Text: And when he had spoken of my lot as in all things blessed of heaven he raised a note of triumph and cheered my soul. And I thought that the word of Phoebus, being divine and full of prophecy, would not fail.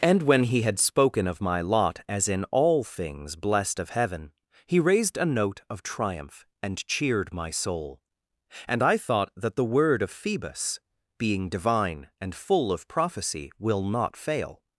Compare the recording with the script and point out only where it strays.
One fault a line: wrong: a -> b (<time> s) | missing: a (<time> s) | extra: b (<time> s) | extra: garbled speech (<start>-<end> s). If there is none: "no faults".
wrong: would -> will (13.6 s)